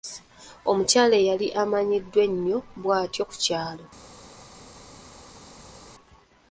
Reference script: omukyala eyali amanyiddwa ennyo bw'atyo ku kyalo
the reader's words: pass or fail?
pass